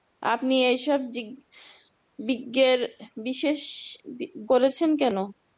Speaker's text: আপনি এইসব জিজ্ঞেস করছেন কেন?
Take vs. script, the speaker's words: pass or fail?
fail